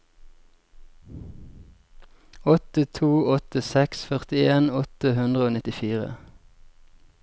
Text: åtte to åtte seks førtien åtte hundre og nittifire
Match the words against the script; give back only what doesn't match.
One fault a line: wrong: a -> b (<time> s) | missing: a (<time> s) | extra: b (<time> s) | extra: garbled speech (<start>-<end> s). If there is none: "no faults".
no faults